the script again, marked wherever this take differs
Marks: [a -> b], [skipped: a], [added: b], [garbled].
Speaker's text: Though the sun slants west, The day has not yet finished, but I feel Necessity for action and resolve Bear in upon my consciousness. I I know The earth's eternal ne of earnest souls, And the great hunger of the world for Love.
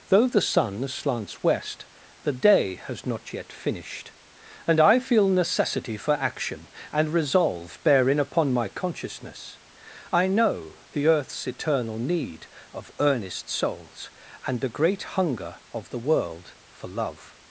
Though the sun slants west, The day has not yet finished, [but -> and] I feel Necessity for action and resolve Bear in upon my consciousness. I [skipped: I] know The earth's eternal [ne -> need] of earnest souls, And the great hunger of the world for Love.